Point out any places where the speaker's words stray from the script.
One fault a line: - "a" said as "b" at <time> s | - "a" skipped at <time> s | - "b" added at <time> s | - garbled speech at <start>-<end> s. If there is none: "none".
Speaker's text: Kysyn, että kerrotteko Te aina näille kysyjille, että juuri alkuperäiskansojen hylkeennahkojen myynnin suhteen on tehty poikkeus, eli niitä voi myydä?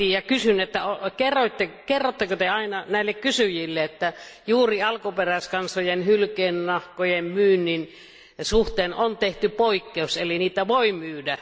none